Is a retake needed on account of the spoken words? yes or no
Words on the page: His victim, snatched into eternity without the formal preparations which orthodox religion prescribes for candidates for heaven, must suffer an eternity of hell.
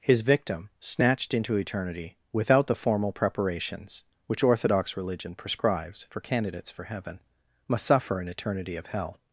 no